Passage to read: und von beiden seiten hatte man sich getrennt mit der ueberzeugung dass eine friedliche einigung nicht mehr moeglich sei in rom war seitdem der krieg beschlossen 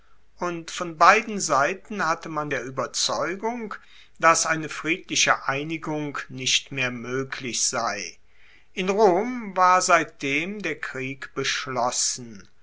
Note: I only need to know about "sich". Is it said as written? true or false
false